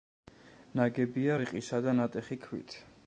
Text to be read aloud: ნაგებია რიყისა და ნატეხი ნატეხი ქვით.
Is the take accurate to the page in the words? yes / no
no